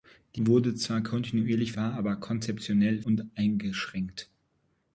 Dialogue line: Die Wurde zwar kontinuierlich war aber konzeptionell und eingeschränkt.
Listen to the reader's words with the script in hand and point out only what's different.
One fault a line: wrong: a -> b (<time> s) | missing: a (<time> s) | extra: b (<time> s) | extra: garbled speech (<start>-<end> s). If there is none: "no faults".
no faults